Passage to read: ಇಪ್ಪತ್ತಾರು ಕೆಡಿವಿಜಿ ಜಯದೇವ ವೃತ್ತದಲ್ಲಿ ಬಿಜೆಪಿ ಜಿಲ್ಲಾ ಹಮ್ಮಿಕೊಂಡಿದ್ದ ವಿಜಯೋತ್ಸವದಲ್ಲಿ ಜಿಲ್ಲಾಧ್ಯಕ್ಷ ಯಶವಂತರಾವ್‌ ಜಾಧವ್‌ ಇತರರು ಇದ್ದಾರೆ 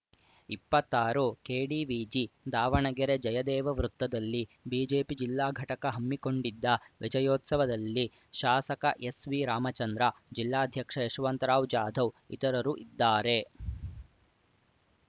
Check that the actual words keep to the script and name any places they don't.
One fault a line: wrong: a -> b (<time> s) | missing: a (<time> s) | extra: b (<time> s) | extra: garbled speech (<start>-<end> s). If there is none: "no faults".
extra: ದಾವಣಗೆರೆ (2.5 s)
extra: ಘಟಕ (5.6 s)
extra: ಶಾಸಕ ಎಸ್‌ವಿರಾಮಚಂದ್ರ (8.3 s)